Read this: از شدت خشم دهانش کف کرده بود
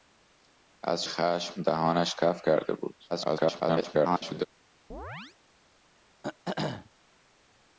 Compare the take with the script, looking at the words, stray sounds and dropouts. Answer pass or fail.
fail